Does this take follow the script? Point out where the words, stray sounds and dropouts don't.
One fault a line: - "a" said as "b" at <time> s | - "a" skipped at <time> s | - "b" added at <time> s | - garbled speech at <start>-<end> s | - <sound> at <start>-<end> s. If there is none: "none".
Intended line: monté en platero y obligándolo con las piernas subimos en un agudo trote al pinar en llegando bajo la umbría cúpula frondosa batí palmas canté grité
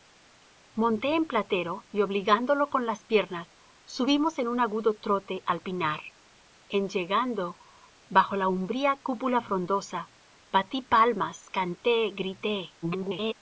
- garbled speech at 12.8-13.3 s